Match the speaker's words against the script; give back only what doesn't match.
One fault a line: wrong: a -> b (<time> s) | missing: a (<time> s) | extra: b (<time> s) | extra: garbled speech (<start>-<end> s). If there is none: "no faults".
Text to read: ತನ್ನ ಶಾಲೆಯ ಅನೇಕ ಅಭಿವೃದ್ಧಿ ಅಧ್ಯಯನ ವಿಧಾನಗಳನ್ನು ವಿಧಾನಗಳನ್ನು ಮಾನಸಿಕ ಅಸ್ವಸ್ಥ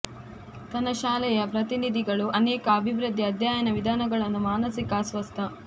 extra: ಪ್ರತಿನಿಧಿಗಳು (1.5 s)
missing: ವಿಧಾನಗಳನ್ನು (4.4 s)